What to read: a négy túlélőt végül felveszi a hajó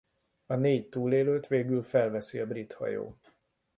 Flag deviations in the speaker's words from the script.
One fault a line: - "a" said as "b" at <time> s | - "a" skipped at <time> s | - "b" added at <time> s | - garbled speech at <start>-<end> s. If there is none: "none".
- "brit" added at 2.5 s